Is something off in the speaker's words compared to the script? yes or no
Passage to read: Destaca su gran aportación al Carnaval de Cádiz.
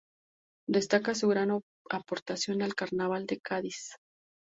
no